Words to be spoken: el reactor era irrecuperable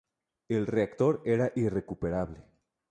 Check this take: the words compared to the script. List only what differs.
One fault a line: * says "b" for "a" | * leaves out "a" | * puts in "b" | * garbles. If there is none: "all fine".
all fine